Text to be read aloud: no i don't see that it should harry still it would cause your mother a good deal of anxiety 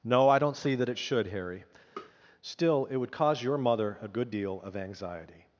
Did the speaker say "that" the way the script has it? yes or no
yes